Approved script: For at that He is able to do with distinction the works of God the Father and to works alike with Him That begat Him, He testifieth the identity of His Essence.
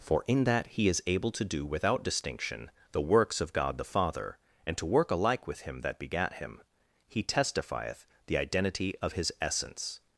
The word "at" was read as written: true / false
false